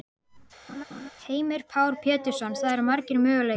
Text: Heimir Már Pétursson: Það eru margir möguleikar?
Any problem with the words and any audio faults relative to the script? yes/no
yes